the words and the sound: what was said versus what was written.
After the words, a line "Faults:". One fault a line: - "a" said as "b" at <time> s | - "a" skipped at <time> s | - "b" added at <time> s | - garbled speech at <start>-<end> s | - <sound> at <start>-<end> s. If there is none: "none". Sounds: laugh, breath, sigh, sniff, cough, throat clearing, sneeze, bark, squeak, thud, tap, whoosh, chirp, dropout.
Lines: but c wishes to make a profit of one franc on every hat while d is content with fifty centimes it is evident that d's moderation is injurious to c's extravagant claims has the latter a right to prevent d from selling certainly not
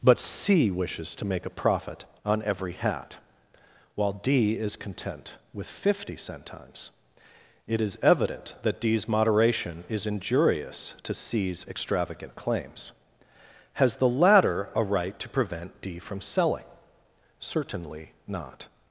but c wishes to make a profit on every hat while d is content with fifty centimes it is evident that d's moderation is injurious to c's extravagant claims has the latter a right to prevent d from selling certainly not
Faults:
- "of one franc" skipped at 2.0 s